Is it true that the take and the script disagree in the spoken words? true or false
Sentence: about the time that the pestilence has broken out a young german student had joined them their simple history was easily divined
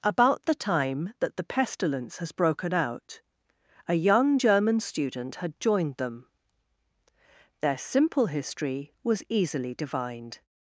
false